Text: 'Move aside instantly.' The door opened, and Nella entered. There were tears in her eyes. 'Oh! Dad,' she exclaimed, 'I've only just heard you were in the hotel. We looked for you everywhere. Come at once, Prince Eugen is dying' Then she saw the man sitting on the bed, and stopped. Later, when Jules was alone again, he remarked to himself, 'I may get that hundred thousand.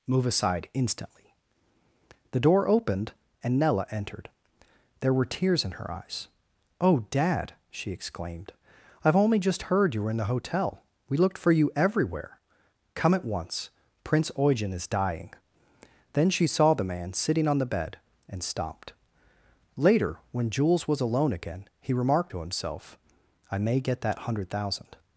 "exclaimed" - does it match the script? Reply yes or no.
yes